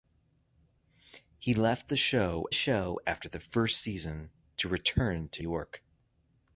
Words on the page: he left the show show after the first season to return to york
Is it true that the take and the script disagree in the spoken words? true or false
false